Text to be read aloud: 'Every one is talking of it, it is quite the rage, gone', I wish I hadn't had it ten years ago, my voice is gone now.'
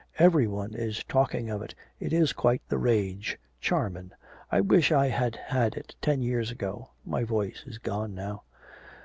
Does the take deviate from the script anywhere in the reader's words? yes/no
yes